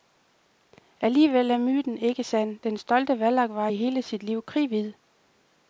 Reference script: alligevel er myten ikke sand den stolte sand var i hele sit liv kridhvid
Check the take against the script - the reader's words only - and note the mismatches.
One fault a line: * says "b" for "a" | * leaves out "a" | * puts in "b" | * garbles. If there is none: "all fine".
* says "vallak" for "sand"